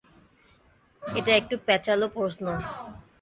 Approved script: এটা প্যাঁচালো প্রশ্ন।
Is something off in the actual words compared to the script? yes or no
yes